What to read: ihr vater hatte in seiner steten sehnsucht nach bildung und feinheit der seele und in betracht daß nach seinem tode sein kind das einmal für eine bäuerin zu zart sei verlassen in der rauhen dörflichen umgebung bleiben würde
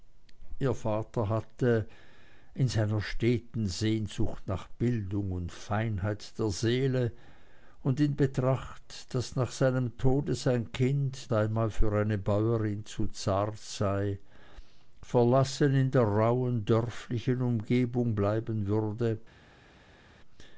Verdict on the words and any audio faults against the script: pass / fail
fail